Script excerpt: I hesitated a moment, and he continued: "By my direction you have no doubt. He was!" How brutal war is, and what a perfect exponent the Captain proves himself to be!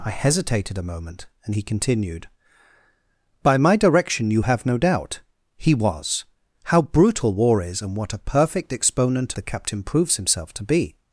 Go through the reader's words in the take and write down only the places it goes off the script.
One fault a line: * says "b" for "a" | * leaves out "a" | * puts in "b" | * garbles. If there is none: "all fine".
all fine